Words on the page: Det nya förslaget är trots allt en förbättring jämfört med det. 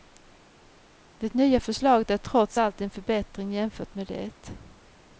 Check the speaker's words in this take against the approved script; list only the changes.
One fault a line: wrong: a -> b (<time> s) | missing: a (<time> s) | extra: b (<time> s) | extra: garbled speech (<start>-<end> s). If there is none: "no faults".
no faults